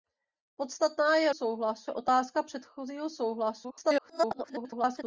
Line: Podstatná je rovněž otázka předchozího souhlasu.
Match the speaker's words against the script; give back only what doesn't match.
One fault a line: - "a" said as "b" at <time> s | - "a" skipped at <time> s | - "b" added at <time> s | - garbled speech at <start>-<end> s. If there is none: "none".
- "rovněž" said as "souhlasu" at 1.3 s
- garbled speech at 3.6-5.0 s